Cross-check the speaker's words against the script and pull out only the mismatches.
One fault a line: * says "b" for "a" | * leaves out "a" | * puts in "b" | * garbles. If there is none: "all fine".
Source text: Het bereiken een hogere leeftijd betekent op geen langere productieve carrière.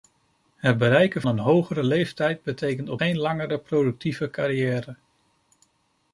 all fine